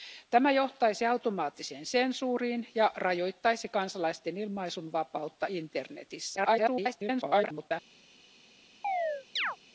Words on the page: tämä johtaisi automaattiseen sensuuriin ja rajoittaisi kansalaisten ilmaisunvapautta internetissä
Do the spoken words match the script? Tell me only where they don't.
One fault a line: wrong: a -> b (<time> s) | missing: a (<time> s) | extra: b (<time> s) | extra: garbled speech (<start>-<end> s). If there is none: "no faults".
extra: garbled speech (6.4-7.7 s)